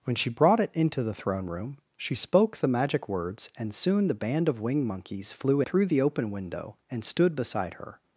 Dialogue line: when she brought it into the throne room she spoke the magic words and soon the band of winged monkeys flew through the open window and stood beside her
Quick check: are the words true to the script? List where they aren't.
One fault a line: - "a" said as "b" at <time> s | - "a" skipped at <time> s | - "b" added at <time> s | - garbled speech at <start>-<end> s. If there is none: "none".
none